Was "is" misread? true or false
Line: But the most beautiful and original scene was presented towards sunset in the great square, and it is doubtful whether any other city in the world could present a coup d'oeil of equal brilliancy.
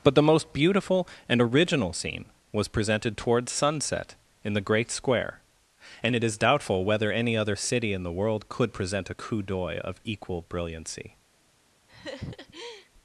false